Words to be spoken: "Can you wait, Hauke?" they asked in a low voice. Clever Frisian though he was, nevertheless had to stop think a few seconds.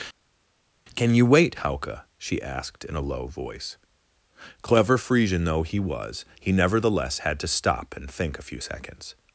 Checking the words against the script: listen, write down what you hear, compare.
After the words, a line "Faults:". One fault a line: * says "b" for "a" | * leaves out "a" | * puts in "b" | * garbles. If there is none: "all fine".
"Can you wait, Hauke?" she asked in a low voice. Clever Frisian though he was, he nevertheless had to stop and think a few seconds.
Faults:
* says "she" for "they"
* puts in "he"
* puts in "and"